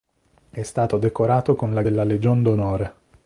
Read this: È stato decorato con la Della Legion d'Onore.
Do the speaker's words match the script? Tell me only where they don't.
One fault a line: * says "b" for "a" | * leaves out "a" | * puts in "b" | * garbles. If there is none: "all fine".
all fine